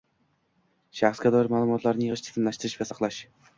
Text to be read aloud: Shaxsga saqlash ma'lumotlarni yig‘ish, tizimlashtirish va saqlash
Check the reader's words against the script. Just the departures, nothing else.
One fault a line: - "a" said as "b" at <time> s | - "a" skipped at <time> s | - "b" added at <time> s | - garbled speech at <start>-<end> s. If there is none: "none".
- "saqlash" said as "doir" at 1.4 s